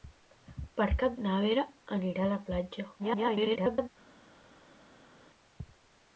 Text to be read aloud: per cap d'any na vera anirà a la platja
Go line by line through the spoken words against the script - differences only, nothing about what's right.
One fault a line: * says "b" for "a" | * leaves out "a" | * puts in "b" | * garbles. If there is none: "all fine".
* leaves out "d'any"
* garbles